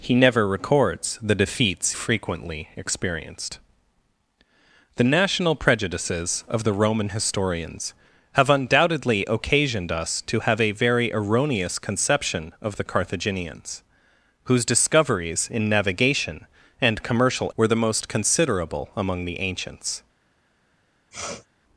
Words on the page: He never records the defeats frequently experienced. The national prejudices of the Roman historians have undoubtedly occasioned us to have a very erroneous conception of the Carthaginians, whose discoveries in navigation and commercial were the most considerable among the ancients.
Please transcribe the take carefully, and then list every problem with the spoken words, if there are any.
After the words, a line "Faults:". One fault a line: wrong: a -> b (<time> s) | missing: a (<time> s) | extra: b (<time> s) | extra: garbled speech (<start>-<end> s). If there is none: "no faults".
He never records the defeats frequently experienced. The national prejudices of the Roman historians have undoubtedly occasioned us to have a very erroneous conception of the Carthaginians, whose discoveries in navigation and commercial were the most considerable among the ancients.
Faults:
no faults